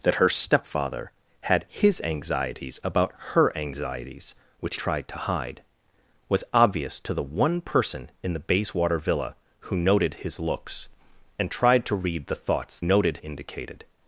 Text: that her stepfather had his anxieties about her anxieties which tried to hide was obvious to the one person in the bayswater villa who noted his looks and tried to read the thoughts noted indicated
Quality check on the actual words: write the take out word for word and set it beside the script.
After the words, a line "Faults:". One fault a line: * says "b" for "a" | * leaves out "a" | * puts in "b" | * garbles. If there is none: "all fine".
that her stepfather had his anxieties about her anxieties which tried to hide was obvious to the one person in the bayswater villa who noted his looks and tried to read the thoughts noted indicated
Faults:
all fine